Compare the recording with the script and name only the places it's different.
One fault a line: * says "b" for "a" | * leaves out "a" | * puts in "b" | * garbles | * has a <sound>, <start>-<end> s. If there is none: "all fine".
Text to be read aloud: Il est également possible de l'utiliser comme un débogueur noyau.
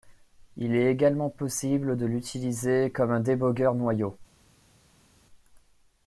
all fine